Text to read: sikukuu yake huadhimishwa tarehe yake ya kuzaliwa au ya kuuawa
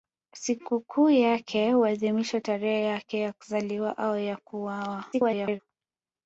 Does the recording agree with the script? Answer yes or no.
no